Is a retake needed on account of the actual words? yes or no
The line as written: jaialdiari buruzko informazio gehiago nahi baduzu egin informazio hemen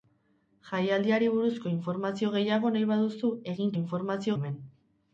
no